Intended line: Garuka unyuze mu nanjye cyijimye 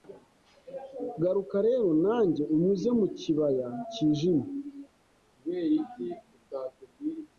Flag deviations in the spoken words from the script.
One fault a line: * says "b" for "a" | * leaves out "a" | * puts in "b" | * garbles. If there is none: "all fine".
* puts in "rero nanjye"
* says "kibaya" for "nanjye"